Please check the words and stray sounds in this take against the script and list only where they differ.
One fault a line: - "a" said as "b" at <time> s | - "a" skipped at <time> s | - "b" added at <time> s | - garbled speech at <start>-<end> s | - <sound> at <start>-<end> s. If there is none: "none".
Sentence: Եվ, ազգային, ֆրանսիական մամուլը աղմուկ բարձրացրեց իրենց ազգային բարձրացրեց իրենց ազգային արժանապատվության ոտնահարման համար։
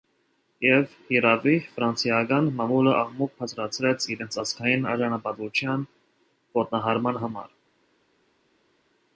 - "ազգային" said as "հիրավի" at 1.1 s
- "բարձրացրեց իրենց ազգային" skipped at 4.9 s